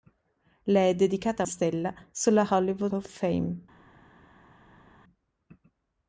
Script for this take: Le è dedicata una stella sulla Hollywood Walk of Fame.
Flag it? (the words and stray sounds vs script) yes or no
yes